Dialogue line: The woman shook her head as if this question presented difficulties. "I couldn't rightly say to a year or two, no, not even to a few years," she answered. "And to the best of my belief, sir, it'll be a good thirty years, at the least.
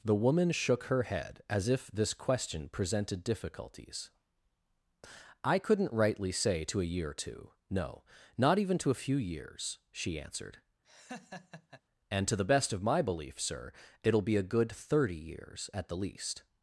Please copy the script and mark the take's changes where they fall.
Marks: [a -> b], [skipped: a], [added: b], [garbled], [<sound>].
The woman shook her head as if this question presented difficulties. "I couldn't rightly say to a year or two, no, not even to a few years," she answered. [laugh] "And to the best of my belief, sir, it'll be a good thirty years, at the least.